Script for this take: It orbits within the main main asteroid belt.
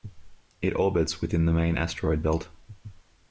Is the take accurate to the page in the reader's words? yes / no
no